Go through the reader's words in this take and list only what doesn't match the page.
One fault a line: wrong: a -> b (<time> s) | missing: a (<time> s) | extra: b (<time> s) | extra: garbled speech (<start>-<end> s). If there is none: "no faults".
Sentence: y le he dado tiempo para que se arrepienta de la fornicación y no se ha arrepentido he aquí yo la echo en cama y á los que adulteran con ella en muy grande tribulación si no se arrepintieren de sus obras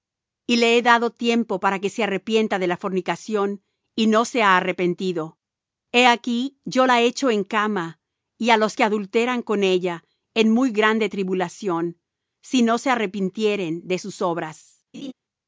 no faults